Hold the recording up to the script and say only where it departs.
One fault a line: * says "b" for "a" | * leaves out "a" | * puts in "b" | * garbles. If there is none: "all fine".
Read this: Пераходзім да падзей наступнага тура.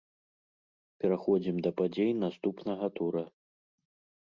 all fine